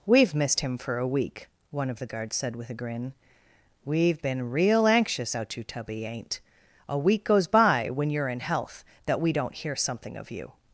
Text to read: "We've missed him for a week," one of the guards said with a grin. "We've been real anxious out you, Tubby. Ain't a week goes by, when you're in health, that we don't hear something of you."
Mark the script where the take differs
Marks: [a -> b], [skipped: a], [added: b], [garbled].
"We've missed him for a week," one of the guards said with a grin. "We've been real anxious out you, Tubby. Ain't a week goes by, when you're in health, that we don't hear something of you."